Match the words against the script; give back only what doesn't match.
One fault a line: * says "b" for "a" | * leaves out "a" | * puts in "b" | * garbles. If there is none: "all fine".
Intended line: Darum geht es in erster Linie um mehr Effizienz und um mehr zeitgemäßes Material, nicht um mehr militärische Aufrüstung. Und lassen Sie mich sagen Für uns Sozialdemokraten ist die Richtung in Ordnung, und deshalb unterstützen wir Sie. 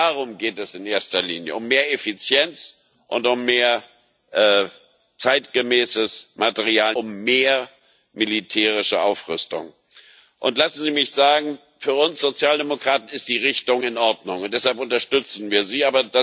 * leaves out "nicht"